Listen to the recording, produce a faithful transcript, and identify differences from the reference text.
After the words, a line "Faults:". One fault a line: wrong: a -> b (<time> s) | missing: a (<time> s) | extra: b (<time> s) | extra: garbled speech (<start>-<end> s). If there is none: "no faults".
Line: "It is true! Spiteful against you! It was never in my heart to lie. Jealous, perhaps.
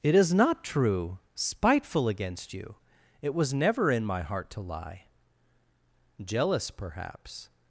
"It is not true! Spiteful against you! It was never in my heart to lie. Jealous, perhaps.
Faults:
extra: not (0.3 s)